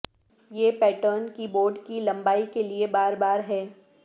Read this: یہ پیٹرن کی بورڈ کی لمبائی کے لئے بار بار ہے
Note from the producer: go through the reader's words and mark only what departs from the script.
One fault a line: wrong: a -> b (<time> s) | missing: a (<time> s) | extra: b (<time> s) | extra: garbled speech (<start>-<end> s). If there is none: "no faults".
no faults